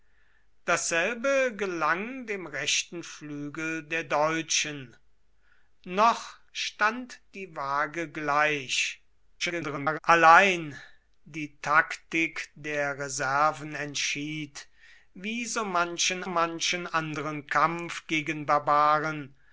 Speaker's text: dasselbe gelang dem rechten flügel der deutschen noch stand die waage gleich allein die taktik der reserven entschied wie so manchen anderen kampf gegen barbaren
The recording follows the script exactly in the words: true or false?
false